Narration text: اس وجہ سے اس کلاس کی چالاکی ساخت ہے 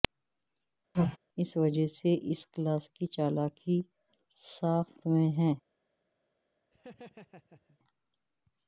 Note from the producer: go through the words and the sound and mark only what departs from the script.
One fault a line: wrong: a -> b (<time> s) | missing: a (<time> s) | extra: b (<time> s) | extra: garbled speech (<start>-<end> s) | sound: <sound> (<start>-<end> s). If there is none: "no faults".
sound: sneeze (0.9-1.2 s)
extra: میں (5.1 s)
sound: laugh (6.7-7.8 s)